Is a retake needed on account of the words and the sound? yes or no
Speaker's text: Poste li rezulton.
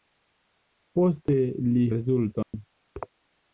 yes